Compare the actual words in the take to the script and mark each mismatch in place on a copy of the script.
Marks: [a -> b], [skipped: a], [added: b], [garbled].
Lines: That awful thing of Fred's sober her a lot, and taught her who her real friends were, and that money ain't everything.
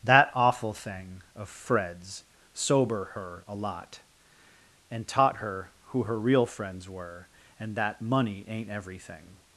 That awful thing of Fred's sober her a lot, and taught her who her real friends were, and that money ain't everything.